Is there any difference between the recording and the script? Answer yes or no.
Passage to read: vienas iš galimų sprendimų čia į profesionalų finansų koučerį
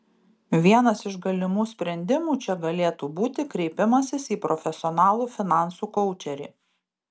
yes